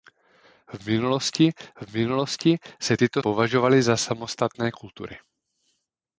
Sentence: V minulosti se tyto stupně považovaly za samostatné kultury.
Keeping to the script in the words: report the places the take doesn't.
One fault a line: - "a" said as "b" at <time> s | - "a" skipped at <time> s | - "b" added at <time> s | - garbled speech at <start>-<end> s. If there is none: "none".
- "v minulosti" added at 1.8 s
- "stupně" skipped at 3.2 s